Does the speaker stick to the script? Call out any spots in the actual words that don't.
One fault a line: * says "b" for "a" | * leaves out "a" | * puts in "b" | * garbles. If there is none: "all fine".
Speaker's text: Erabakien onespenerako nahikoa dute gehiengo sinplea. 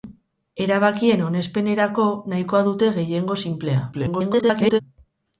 * garbles